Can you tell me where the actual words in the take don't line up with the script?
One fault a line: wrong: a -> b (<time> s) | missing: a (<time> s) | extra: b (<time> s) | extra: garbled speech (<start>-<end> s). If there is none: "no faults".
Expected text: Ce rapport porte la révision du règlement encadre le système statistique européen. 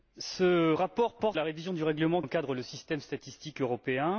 no faults